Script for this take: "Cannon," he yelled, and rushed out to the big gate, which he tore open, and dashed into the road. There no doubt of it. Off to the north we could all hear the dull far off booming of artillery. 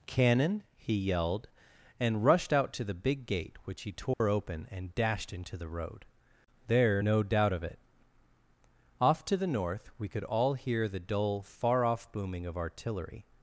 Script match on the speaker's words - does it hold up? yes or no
yes